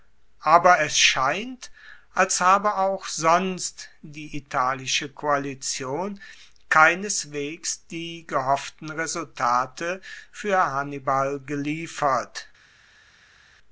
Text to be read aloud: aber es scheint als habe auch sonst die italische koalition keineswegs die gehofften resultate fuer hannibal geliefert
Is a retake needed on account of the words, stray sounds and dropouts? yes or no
no